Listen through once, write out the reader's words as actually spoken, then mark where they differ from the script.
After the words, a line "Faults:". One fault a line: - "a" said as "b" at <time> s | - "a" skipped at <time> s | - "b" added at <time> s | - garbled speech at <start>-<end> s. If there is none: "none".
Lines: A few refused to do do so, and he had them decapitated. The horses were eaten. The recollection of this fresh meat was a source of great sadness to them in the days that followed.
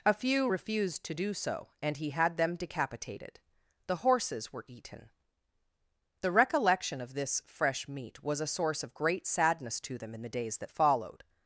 A few refused to do so, and he had them decapitated. The horses were eaten. The recollection of this fresh meat was a source of great sadness to them in the days that followed.
Faults:
- "do" skipped at 1.3 s